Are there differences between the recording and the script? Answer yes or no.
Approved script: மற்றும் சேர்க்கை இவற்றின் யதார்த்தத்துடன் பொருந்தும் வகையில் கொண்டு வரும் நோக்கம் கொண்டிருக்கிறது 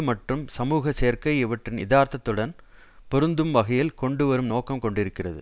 yes